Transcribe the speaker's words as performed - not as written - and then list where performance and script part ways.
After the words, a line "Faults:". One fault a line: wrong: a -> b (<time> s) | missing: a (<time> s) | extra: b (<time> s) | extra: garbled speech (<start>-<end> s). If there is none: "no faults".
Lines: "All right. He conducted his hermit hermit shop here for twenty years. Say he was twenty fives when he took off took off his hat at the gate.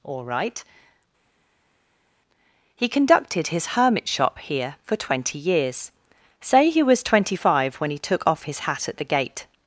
"All right. He conducted his hermit shop here for twenty years. Say he was twenty five when he took off his hat at the gate.
Faults:
missing: hermit (4.1 s)
wrong: fives -> five (7.4 s)
missing: took off (8.4 s)